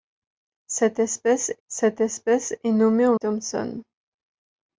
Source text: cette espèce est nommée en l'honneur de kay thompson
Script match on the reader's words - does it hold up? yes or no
no